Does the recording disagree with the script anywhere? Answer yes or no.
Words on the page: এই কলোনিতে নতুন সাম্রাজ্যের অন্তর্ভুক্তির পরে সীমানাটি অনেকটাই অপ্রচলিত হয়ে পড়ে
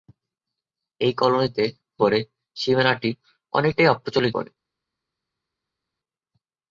yes